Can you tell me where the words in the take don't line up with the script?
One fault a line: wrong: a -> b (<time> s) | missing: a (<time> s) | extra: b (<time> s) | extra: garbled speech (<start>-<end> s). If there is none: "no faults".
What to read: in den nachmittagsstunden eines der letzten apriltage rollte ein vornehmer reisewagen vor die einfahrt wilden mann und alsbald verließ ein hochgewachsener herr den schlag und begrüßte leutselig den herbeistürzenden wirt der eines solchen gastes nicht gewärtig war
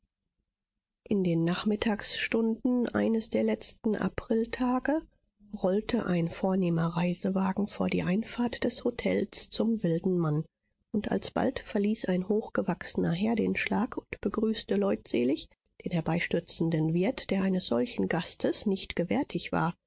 extra: des hotels zum (8.6 s)